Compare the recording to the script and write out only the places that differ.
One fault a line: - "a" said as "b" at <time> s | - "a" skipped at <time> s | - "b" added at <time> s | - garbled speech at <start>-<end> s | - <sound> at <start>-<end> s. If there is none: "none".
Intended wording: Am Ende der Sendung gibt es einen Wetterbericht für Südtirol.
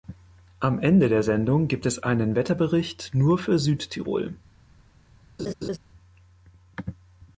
- "nur" added at 3.1 s
- laugh at 5.4-5.8 s